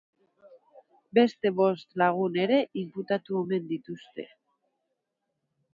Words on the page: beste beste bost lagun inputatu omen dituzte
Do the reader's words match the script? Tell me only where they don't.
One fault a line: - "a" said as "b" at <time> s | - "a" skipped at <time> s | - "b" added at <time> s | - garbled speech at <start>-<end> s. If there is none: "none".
- "beste" skipped at 1.5 s
- "ere" added at 2.5 s